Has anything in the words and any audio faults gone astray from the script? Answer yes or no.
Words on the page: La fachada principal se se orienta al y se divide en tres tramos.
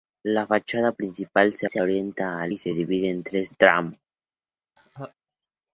yes